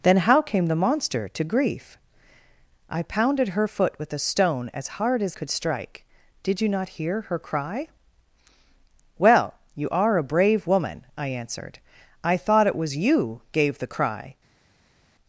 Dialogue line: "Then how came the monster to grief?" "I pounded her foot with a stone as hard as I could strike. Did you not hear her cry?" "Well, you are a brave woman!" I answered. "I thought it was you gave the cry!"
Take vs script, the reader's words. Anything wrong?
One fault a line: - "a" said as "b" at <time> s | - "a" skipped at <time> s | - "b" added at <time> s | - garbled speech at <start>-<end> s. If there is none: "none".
- "I" skipped at 5.3 s